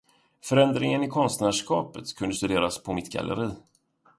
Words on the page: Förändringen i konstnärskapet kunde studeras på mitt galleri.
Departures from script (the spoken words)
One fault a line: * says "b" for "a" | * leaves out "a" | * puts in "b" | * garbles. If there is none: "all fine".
all fine